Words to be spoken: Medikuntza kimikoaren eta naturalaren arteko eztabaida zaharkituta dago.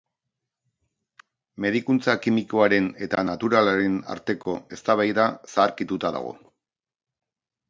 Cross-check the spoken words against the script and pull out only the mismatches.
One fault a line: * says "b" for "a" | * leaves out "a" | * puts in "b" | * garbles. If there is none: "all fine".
all fine